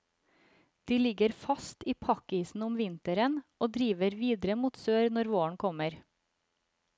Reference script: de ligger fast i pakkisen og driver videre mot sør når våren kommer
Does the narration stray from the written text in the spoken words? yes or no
yes